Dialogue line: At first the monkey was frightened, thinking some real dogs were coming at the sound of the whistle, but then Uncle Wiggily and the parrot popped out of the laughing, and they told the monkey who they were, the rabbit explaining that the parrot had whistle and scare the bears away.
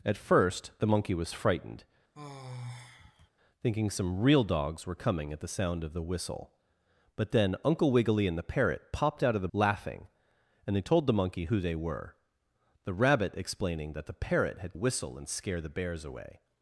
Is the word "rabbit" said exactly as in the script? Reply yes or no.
yes